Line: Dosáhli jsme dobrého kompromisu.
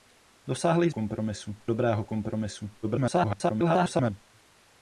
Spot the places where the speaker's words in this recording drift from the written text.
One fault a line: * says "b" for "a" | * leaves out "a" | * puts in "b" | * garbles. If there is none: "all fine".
* says "kompromisu" for "jsme"
* garbles